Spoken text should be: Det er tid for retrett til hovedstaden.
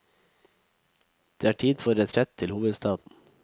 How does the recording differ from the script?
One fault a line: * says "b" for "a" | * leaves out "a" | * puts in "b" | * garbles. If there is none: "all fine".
all fine